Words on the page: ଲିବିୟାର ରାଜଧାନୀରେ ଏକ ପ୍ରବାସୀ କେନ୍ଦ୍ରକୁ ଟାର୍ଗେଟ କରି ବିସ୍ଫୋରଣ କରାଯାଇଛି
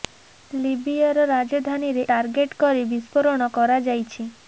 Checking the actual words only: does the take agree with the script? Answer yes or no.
no